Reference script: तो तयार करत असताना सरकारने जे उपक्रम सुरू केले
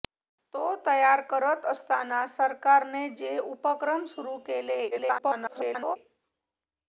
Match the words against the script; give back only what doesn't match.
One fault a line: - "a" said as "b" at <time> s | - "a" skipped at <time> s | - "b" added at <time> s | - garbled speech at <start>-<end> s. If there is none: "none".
- garbled speech at 4.9-6.0 s